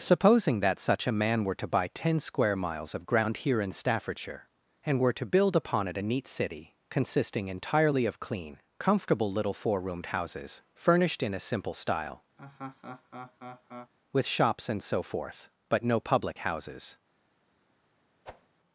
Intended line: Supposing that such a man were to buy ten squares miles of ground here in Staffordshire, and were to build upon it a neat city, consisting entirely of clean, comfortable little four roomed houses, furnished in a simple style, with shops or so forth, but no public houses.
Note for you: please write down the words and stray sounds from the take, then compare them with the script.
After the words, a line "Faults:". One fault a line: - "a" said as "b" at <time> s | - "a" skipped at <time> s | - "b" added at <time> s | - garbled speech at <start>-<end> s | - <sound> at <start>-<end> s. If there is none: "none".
Supposing that such a man were to buy ten square miles of ground here in Staffordshire, and were to build upon it a neat city, consisting entirely of clean, comfortable little four roomed houses, furnished in a simple style, with shops and so forth, but no public houses.
Faults:
- "squares" said as "square" at 2.2 s
- laugh at 12.4-13.9 s
- "or" said as "and" at 14.7 s
- whoosh at 18.3-18.5 s